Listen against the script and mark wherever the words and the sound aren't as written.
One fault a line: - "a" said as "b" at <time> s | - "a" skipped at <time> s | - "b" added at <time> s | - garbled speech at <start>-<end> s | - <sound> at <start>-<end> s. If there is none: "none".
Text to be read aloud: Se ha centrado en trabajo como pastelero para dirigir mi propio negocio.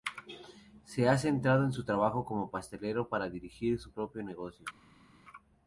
- "su" added at 1.7 s
- "mi" said as "su" at 3.8 s